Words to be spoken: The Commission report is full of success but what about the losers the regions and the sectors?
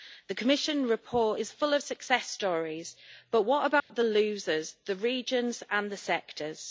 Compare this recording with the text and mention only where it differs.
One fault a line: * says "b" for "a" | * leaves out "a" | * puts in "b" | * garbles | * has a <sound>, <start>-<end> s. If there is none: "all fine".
* puts in "stories"
* has a dropout, 3.8-3.9 s